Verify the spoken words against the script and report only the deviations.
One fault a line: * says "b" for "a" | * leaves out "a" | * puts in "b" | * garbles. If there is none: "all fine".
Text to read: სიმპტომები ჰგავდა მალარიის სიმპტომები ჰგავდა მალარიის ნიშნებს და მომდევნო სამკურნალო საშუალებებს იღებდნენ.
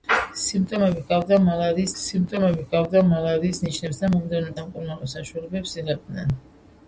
all fine